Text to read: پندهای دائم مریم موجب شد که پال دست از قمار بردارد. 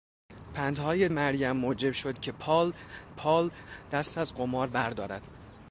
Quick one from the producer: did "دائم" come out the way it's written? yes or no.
no